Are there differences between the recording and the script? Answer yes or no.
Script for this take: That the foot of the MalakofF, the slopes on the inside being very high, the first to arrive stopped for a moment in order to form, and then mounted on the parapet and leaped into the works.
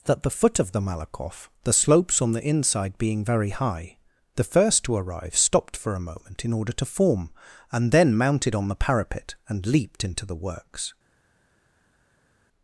no